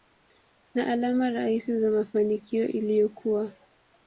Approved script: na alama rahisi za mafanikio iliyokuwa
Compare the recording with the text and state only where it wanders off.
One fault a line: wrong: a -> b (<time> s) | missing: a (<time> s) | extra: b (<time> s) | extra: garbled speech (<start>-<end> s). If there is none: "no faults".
no faults